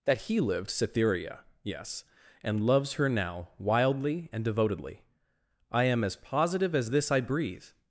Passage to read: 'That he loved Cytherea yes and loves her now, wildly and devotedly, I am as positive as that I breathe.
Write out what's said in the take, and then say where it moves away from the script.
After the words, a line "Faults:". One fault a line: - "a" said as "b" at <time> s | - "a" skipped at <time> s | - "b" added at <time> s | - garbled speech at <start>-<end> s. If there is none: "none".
'That he lived Cytherea yes and loves her now, wildly and devotedly, I am as positive as this I breathe.
Faults:
- "loved" said as "lived" at 0.4 s
- "that" said as "this" at 6.9 s